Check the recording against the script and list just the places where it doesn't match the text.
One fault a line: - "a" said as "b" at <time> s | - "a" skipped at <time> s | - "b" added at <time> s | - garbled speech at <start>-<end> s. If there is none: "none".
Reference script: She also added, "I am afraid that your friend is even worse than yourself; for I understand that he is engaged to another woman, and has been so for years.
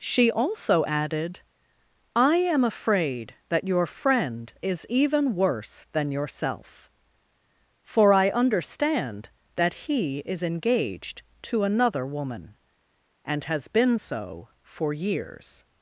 none